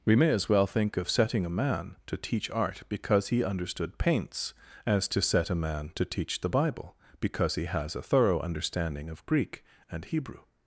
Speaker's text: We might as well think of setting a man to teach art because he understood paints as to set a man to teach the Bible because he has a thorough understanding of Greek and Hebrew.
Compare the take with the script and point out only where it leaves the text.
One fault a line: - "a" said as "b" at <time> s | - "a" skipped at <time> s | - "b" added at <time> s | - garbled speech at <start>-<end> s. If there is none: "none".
- "might" said as "may" at 0.1 s